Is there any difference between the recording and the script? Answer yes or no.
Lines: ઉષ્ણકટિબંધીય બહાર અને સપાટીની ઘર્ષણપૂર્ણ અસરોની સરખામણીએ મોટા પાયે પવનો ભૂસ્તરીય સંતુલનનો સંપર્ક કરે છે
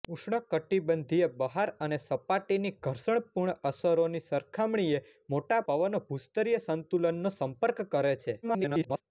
yes